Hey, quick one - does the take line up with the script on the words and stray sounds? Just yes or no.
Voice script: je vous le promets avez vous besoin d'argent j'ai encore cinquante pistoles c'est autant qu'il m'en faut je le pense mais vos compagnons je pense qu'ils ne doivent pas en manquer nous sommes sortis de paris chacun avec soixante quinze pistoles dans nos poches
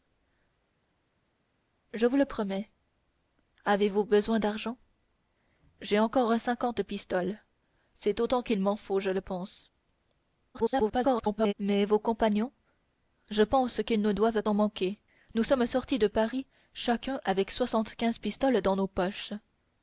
no